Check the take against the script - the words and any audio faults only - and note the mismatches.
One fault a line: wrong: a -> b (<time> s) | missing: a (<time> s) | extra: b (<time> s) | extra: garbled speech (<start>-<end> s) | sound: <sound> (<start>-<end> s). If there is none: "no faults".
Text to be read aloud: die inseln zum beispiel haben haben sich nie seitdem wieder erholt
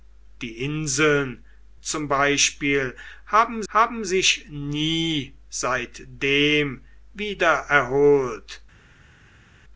no faults